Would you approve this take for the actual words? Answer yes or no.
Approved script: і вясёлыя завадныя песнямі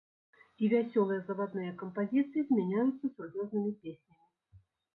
no